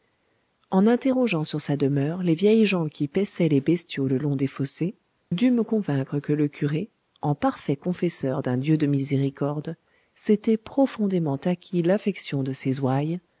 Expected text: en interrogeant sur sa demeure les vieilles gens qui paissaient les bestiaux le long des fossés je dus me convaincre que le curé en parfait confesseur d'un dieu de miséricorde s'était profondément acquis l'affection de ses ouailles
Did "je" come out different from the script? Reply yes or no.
yes